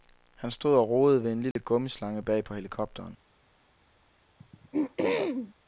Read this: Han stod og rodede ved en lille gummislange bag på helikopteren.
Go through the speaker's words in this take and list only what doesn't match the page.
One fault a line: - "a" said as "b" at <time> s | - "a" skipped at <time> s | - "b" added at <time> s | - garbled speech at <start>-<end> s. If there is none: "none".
none